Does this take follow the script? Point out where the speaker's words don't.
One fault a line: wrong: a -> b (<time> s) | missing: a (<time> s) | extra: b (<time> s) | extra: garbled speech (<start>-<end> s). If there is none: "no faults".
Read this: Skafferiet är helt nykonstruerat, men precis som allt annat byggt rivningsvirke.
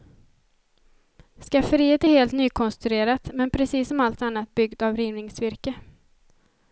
extra: av (4.8 s)